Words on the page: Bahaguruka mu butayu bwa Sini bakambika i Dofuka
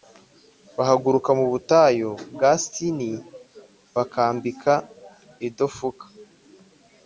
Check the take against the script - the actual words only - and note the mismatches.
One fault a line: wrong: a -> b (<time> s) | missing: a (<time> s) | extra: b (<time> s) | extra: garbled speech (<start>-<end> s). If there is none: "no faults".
no faults